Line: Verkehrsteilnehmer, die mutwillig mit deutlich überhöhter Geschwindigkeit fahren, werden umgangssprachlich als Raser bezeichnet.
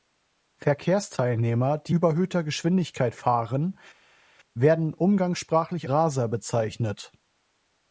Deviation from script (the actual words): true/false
true